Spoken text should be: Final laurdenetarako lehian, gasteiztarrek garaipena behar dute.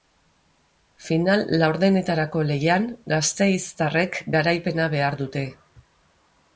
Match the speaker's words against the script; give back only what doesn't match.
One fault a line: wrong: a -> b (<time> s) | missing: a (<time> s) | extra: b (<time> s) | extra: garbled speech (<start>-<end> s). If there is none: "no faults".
no faults